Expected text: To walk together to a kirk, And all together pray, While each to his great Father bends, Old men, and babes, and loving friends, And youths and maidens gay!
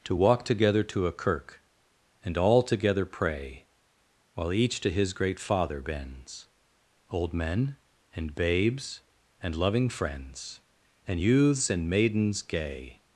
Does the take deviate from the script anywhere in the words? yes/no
no